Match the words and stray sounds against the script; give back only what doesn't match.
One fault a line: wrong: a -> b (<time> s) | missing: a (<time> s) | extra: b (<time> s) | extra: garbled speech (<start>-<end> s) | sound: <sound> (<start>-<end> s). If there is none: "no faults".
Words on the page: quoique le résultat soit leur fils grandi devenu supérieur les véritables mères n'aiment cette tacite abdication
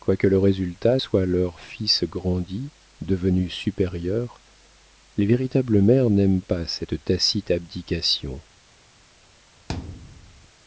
extra: pas (6.4 s)
sound: thud (9.7-10.5 s)